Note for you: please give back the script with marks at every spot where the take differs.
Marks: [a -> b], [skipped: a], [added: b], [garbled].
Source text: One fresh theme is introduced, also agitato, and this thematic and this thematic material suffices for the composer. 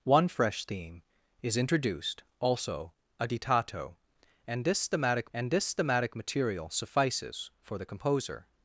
One fresh theme is introduced, also agitato, and this thematic and this thematic material suffices for the composer.